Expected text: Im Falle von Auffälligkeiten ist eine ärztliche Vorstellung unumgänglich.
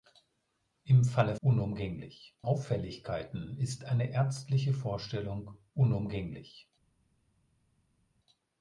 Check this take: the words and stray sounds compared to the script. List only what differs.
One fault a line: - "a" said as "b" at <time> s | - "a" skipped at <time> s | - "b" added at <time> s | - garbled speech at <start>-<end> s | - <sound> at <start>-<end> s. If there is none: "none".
- "von" said as "unumgänglich" at 1.4 s